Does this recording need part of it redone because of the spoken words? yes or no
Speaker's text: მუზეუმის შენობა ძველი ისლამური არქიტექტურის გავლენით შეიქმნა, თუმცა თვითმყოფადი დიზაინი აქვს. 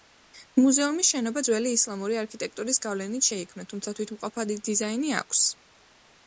no